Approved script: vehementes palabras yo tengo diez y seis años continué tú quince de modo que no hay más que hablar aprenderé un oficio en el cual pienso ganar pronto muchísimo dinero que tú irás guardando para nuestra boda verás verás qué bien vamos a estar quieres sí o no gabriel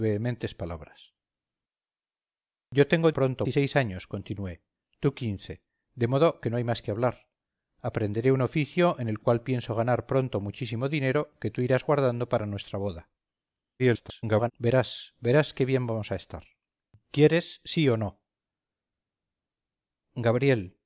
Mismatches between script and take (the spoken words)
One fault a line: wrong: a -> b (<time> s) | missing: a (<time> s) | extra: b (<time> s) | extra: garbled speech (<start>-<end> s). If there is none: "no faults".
wrong: diez -> pronto (3.1 s)
extra: garbled speech (13.8-14.5 s)